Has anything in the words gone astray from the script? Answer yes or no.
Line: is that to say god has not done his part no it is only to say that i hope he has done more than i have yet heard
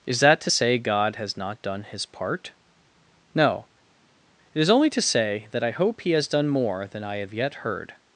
no